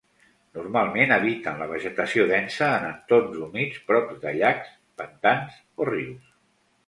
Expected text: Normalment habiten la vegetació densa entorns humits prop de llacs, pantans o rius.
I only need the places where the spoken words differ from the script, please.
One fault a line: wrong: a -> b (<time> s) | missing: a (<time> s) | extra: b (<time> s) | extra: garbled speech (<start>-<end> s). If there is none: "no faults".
extra: en (2.8 s)